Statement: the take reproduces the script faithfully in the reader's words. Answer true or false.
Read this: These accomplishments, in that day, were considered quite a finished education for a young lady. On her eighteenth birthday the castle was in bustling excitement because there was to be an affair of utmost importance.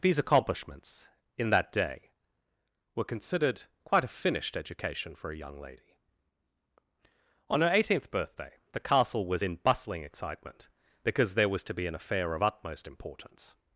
true